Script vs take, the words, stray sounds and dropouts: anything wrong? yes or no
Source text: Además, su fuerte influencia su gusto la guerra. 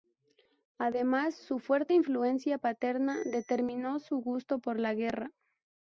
yes